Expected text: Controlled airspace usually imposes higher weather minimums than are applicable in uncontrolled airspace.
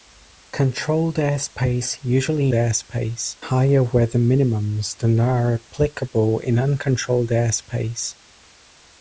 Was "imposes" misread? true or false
true